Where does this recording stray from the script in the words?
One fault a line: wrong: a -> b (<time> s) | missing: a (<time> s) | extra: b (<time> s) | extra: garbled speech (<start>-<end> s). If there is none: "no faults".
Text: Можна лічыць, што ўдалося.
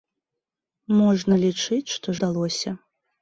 no faults